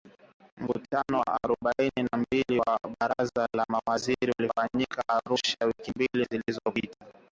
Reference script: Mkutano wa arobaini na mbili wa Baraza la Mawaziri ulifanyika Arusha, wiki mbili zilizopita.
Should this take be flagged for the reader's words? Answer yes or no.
no